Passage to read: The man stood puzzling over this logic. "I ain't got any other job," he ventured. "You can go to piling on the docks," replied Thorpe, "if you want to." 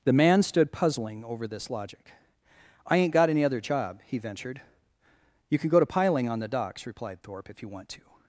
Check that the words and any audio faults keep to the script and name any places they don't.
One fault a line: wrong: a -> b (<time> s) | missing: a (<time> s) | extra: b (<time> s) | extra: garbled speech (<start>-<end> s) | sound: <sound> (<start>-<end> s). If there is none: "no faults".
no faults